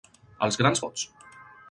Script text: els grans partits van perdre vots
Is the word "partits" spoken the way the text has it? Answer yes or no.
no